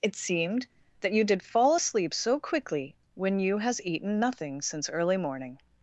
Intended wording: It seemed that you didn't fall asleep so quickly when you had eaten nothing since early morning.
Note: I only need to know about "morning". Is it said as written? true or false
true